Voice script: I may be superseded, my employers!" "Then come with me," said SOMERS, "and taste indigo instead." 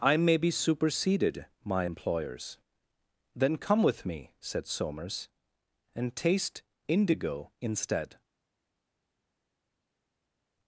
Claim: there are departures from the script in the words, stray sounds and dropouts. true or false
false